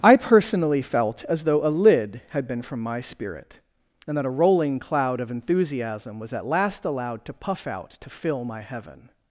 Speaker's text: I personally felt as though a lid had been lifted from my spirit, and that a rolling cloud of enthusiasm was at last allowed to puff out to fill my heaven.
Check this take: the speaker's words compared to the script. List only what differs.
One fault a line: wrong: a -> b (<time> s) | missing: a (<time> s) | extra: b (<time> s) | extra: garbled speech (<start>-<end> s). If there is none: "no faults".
missing: lifted (2.6 s)